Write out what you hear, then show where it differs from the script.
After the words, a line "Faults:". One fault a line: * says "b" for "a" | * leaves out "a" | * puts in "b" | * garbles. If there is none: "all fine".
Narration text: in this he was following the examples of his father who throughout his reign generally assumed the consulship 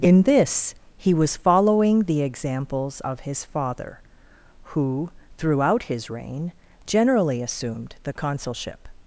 in this he was following the examples of his father who throughout his reign generally assumed the consulship
Faults:
all fine